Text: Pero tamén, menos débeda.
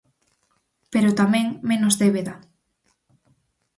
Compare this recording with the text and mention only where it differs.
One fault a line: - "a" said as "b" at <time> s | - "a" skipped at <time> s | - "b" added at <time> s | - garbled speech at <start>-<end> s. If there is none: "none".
none